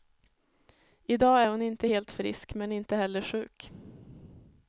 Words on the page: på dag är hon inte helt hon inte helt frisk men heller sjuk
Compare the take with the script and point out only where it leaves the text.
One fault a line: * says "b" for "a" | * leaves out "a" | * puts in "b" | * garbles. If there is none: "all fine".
* says "i" for "på"
* leaves out "hon inte helt"
* puts in "inte"